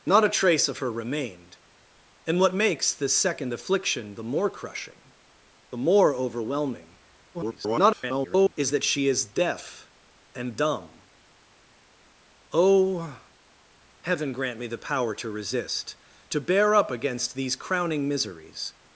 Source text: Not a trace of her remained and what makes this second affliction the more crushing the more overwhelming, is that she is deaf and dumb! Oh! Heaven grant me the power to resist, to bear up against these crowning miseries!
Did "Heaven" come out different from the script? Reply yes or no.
no